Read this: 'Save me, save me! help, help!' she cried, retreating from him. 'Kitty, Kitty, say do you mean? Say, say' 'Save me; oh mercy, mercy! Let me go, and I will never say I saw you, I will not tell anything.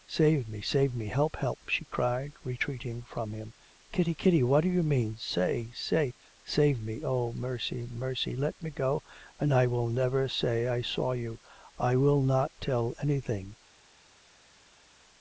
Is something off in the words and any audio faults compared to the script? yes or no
yes